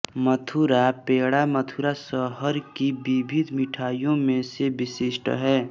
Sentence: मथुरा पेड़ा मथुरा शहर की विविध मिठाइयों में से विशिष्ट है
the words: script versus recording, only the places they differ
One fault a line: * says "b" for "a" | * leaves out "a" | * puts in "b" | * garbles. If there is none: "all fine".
all fine